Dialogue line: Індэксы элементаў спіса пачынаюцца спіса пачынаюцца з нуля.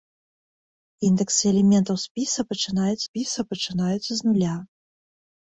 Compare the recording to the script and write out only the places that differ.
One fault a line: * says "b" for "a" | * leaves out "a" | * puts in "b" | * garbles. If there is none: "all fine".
all fine